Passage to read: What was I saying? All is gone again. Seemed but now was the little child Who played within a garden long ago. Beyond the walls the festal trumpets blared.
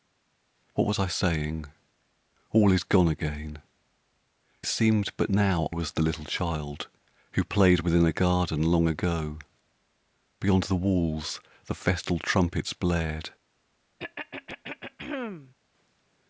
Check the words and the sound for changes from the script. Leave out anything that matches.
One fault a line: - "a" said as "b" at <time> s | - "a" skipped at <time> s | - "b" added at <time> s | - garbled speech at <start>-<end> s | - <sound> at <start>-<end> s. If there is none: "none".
- throat clearing at 14.0-15.5 s